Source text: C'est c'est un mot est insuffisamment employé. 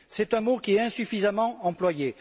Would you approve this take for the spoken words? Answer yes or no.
no